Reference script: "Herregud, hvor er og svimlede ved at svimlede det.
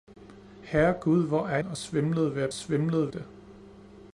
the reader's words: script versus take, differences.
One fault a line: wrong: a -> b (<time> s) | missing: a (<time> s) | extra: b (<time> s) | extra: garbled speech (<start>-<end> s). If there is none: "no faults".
no faults